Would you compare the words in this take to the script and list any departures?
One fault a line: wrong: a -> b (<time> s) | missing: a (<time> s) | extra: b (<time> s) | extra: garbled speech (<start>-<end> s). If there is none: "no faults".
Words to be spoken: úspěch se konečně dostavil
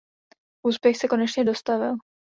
no faults